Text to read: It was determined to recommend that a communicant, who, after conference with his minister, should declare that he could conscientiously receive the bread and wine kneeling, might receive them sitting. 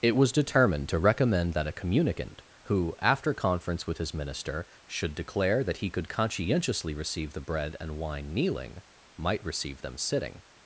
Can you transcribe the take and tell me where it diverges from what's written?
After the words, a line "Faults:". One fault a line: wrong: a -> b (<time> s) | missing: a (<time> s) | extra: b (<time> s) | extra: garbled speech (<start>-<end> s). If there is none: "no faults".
It was determined to recommend that a communicant, who, after conference with his minister, should declare that he could conscientiously receive the bread and wine kneeling, might receive them sitting.
Faults:
no faults